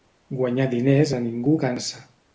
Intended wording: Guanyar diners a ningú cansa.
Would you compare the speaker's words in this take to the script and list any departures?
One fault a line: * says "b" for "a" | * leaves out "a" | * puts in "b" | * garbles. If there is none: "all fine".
all fine